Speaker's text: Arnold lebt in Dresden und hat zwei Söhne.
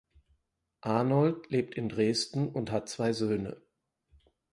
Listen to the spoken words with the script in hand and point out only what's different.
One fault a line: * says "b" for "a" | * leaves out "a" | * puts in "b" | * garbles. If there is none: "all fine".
all fine